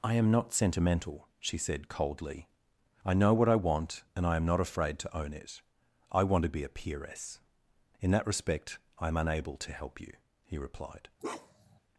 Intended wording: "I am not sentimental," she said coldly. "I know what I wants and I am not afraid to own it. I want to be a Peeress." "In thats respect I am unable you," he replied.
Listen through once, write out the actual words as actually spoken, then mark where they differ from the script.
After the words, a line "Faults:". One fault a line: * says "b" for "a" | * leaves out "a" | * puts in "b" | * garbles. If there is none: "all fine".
"I am not sentimental," she said coldly. "I know what I want and I am not afraid to own it. I want to be a Peeress." "In that respect I am unable to help you," he replied.
Faults:
* says "want" for "wants"
* says "that" for "thats"
* puts in "to help"